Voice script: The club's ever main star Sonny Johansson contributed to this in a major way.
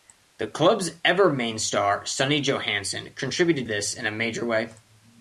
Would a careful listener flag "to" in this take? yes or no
yes